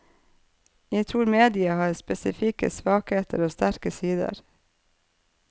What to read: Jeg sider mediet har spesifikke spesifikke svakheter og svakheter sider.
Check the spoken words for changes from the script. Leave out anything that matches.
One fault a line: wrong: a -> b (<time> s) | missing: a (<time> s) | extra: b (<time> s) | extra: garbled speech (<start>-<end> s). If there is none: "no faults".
wrong: sider -> tror (1.1 s)
missing: spesifikke (2.7 s)
wrong: svakheter -> sterke (3.5 s)